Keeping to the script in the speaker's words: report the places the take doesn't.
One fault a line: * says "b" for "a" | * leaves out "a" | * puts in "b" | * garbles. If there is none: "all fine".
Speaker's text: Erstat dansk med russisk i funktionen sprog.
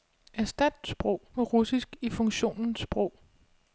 * says "sprog" for "dansk"